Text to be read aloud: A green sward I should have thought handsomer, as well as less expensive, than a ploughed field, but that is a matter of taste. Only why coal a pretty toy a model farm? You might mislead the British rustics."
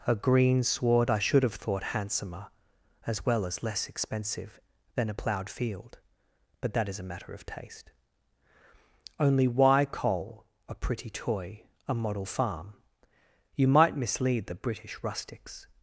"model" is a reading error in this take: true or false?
false